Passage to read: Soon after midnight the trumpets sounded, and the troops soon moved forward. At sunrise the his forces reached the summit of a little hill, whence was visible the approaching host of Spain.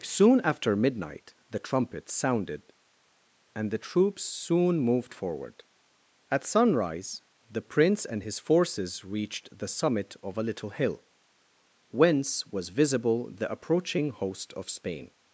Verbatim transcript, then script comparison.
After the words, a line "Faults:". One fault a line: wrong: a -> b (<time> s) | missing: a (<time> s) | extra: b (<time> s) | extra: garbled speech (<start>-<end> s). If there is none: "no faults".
Soon after midnight the trumpets sounded, and the troops soon moved forward. At sunrise the prince and his forces reached the summit of a little hill, whence was visible the approaching host of Spain.
Faults:
extra: prince and (7.6 s)